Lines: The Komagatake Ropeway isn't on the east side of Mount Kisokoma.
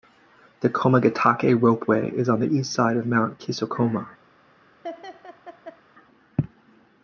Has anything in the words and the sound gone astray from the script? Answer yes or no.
yes